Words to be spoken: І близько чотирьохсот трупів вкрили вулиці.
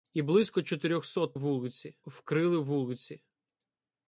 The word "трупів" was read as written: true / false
false